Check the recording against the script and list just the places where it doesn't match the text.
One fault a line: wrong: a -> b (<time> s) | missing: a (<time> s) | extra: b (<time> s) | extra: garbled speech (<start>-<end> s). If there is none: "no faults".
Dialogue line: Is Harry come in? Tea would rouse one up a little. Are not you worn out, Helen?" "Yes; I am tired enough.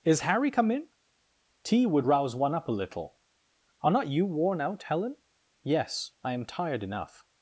no faults